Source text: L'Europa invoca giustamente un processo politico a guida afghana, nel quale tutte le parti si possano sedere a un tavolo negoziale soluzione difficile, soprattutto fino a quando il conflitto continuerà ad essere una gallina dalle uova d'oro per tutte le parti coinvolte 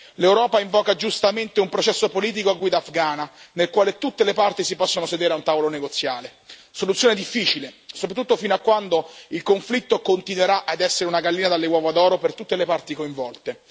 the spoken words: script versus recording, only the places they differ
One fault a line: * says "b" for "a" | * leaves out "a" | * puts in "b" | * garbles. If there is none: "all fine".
all fine